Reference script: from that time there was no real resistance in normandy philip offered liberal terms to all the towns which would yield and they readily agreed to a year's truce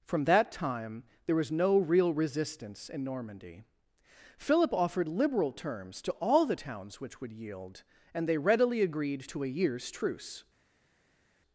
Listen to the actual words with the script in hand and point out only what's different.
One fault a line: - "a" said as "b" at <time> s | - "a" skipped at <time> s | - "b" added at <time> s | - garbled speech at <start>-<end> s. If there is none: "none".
none